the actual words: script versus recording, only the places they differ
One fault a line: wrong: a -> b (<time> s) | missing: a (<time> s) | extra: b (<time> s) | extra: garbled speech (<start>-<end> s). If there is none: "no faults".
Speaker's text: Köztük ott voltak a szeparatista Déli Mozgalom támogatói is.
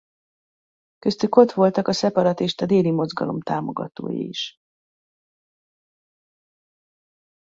no faults